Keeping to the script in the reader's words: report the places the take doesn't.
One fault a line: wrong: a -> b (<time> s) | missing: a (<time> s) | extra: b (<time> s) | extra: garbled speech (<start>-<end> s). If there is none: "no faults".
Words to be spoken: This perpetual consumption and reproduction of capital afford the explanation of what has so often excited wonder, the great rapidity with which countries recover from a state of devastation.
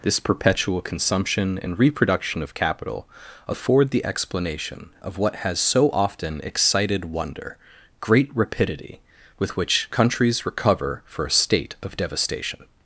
missing: the (7.6 s)
wrong: from -> for (11.1 s)